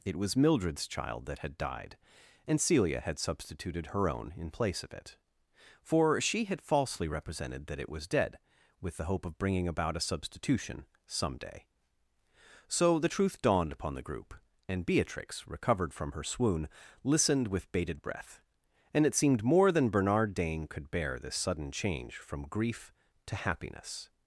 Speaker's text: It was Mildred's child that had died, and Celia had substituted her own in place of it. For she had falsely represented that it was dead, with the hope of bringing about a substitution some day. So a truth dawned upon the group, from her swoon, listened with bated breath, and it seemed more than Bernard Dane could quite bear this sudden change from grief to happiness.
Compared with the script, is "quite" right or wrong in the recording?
wrong